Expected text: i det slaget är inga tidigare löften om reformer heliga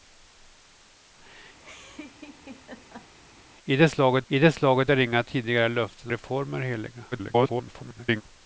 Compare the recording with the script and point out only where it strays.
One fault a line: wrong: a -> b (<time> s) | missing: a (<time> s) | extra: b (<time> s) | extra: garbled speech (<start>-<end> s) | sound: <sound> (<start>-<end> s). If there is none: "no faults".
sound: laugh (1.6-3.1 s)
extra: i det slaget (4.3 s)
missing: om (6.1 s)
extra: garbled speech (7.1-8.2 s)